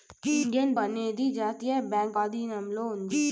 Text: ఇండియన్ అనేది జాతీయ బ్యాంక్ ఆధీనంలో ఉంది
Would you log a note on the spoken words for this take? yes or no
no